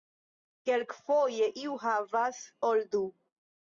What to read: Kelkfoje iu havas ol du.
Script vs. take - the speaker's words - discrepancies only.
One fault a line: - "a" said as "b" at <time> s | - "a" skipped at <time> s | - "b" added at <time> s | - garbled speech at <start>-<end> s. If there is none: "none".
none